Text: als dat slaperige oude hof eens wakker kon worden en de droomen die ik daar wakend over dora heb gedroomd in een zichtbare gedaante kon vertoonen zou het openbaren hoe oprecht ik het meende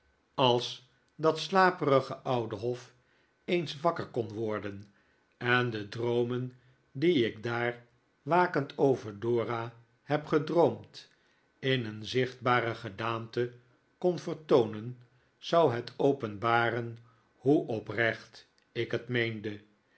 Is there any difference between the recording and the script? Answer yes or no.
no